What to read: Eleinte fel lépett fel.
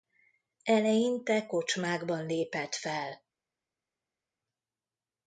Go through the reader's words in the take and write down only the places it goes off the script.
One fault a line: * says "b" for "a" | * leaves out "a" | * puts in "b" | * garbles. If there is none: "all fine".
* says "kocsmákban" for "fel"